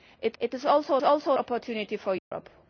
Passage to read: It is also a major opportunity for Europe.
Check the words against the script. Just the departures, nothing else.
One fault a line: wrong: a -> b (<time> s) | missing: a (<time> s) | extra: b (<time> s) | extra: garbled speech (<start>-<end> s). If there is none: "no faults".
extra: it (0.4 s)
wrong: major -> also (1.0 s)